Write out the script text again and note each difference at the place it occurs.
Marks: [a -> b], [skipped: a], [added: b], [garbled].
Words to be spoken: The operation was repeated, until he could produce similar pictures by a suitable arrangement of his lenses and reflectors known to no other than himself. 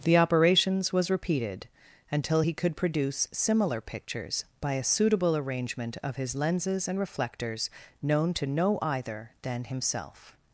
The [operation -> operations] was repeated, until he could produce similar pictures by a suitable arrangement of his lenses and reflectors known to no [other -> either] than himself.